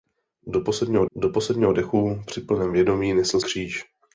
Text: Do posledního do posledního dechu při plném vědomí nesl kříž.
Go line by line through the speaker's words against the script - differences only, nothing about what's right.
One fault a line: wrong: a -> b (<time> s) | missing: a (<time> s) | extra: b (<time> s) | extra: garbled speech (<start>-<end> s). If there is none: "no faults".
no faults